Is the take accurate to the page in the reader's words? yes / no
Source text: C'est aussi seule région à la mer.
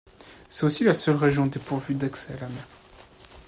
no